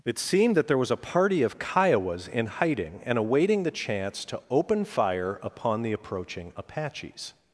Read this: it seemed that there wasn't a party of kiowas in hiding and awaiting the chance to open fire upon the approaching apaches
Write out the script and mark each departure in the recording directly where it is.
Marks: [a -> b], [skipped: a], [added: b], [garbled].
it seemed that there [wasn't -> was] a party of kiowas in hiding and awaiting the chance to open fire upon the approaching apaches